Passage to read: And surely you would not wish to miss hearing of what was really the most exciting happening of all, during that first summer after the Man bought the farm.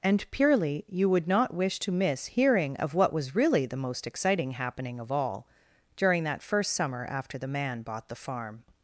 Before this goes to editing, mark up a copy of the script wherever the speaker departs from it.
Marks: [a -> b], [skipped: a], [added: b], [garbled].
And [surely -> purely] you would not wish to miss hearing of what was really the most exciting happening of all, during that first summer after the Man bought the farm.